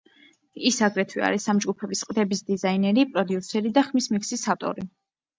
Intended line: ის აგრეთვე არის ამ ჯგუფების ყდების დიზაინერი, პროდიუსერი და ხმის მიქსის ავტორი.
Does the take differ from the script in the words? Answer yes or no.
no